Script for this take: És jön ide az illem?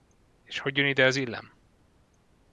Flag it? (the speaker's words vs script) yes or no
yes